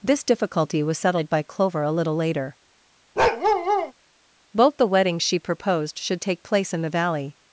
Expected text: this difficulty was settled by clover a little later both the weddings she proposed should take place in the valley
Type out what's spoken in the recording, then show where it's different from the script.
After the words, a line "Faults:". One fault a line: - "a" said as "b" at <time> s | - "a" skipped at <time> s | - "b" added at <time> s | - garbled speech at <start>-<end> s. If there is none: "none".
this difficulty was settled by clover a little later both the weddings she proposed should take place in the valley
Faults:
none